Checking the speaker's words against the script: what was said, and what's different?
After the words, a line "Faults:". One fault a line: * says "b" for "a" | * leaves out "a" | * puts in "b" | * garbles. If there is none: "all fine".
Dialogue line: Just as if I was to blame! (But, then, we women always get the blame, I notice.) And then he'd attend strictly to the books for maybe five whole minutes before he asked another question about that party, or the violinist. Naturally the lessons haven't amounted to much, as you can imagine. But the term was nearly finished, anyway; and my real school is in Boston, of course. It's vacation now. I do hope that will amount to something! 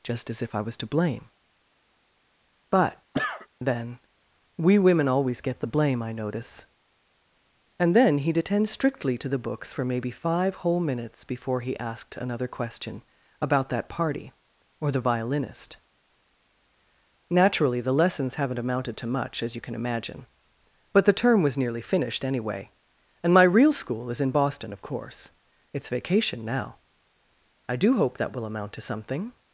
Just as if I was to blame! (But, then, we women always get the blame, I notice.) And then he'd attend strictly to the books for maybe five whole minutes before he asked another question about that party, or the violinist. Naturally the lessons haven't amounted to much, as you can imagine. But the term was nearly finished, anyway; and my real school is in Boston, of course. It's vacation now. I do hope that will amount to something!
Faults:
all fine